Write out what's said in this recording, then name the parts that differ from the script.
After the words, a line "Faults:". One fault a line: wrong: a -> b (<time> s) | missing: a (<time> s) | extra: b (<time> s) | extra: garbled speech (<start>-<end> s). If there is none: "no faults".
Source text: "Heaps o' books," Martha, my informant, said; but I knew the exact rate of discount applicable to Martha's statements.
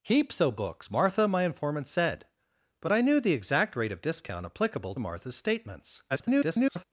"Heaps o' books," Martha, my informant, said; but I knew the exact rate of discount applicable Martha's statements. [garbled]
Faults:
missing: to (5.0 s)
extra: garbled speech (6.1-6.8 s)